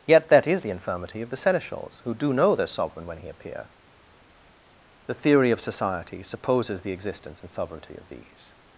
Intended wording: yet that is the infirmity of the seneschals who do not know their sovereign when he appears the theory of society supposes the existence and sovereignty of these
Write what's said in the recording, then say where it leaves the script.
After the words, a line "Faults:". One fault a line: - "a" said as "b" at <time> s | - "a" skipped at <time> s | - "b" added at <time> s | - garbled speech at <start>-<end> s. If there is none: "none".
yet that is the infirmity of the seneschals who do know their sovereign when he appear the theory of society supposes the existence and sovereignty of these
Faults:
- "not" skipped at 2.3 s
- "appears" said as "appear" at 3.3 s